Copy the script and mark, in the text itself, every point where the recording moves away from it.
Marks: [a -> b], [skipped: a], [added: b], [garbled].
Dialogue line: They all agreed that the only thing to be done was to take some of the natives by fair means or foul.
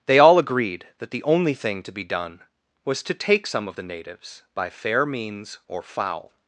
They all agreed that the only thing to be done was to take some of the natives by fair means or foul.